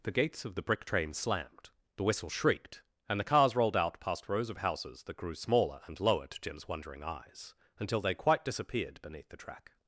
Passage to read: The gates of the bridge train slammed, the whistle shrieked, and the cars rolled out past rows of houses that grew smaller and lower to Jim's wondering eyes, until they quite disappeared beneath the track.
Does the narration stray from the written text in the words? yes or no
yes